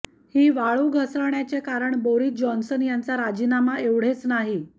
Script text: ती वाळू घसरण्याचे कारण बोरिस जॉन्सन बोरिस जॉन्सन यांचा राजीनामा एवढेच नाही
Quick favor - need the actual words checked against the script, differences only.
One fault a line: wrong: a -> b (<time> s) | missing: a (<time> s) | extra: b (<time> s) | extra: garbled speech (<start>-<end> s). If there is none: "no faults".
wrong: ती -> ही (0.3 s)
missing: बोरिस जॉन्सन (2.8 s)